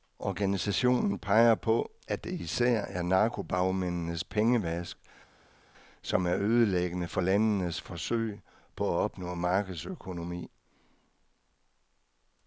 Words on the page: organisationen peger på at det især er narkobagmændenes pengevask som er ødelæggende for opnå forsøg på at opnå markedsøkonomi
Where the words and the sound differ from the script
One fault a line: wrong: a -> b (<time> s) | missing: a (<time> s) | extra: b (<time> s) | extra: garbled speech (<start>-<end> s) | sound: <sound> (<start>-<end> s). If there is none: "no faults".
wrong: opnå -> landenes (7.2 s)